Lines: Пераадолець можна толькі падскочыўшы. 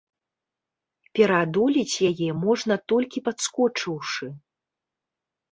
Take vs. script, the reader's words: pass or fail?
fail